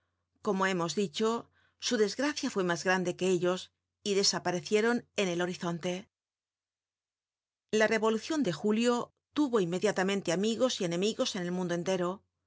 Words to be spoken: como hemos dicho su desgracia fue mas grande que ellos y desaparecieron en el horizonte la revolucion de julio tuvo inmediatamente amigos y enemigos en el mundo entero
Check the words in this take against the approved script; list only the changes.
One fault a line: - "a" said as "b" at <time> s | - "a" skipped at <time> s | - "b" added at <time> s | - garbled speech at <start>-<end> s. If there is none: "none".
none